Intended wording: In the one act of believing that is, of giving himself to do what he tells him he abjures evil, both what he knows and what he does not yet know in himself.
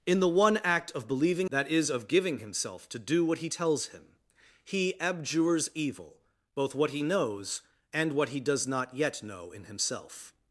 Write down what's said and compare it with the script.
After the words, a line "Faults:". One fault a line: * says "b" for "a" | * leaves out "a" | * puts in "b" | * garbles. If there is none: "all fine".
In the one act of believing that is, of giving himself to do what he tells him he abjures evil, both what he knows and what he does not yet know in himself.
Faults:
all fine